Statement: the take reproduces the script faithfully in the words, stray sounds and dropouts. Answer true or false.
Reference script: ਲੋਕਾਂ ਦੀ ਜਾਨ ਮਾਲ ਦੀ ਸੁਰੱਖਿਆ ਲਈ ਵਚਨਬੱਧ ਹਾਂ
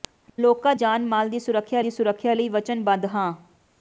false